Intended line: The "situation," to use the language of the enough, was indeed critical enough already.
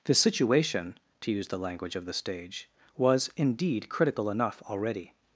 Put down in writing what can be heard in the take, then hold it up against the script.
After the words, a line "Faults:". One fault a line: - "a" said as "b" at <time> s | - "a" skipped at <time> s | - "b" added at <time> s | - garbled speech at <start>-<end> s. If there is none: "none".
The "situation," to use the language of the stage, was indeed critical enough already.
Faults:
- "enough" said as "stage" at 2.1 s